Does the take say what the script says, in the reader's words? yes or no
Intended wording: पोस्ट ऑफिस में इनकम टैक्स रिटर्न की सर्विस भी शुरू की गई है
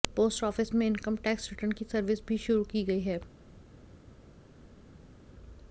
yes